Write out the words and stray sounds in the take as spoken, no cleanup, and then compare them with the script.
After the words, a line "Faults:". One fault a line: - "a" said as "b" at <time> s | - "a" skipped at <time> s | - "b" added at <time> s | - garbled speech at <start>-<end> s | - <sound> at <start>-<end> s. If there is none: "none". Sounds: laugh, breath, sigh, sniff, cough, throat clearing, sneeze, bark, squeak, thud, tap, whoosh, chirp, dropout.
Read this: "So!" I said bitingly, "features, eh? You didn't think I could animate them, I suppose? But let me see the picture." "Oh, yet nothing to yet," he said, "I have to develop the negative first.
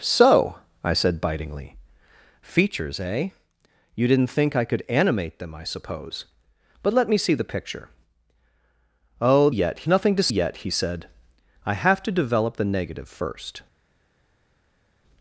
"So!" I said bitingly, "features, eh? You didn't think I could animate them, I suppose? But let me see the picture." "Oh, yet nothing to yet," he said, "I have to develop the negative first.
Faults:
none